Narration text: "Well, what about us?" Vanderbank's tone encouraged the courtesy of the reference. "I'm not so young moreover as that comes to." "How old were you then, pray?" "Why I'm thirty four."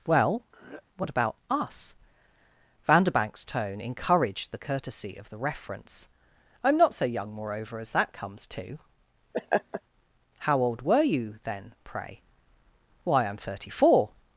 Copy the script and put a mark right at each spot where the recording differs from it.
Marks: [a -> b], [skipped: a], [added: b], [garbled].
"Well, what about us?" Vanderbank's tone encouraged the courtesy of the reference. "I'm not so young moreover as that comes to." "How old were you then, pray?" "Why I'm thirty four."